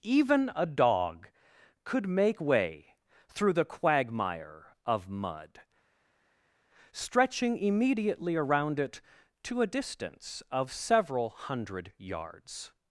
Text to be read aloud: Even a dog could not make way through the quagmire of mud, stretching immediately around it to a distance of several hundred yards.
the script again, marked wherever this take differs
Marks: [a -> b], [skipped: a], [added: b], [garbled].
Even a dog could [skipped: not] make way through the quagmire of mud, stretching immediately around it to a distance of several hundred yards.